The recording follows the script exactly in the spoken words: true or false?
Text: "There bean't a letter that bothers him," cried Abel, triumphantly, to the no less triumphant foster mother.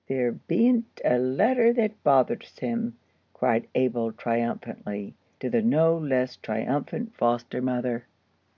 true